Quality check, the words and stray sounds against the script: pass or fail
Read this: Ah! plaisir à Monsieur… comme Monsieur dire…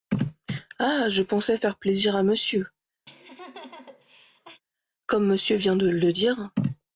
fail